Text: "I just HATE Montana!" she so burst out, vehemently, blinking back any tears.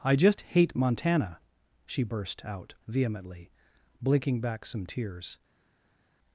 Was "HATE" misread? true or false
false